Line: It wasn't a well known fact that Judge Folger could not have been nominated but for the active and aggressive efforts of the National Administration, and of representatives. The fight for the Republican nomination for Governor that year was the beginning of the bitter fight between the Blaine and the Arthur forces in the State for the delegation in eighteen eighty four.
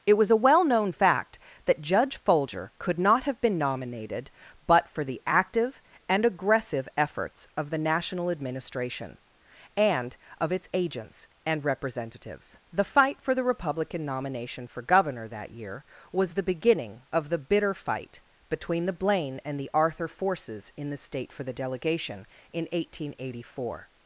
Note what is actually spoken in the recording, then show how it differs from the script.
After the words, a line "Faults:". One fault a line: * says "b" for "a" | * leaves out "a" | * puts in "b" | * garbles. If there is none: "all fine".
It was a well known fact that Judge Folger could not have been nominated but for the active and aggressive efforts of the National Administration, and of its agents and representatives. The fight for the Republican nomination for Governor that year was the beginning of the bitter fight between the Blaine and the Arthur forces in the State for the delegation in eighteen eighty four.
Faults:
* says "was" for "wasn't"
* puts in "its agents and"